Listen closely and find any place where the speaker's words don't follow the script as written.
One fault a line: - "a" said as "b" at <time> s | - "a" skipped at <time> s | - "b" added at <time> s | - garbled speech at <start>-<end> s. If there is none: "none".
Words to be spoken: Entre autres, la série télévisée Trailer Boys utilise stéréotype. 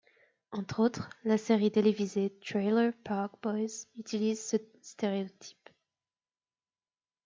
- "Park" added at 3.0 s
- "ce" added at 4.4 s